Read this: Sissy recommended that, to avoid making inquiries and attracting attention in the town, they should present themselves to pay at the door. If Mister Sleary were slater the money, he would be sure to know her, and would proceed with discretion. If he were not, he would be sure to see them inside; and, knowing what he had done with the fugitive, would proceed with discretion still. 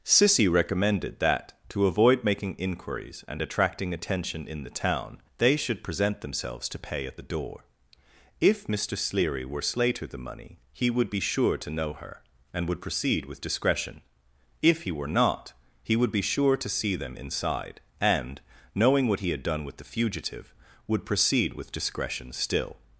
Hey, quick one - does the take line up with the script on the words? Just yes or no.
yes